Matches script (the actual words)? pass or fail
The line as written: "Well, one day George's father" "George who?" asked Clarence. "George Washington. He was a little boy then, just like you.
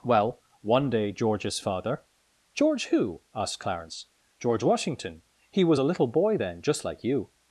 pass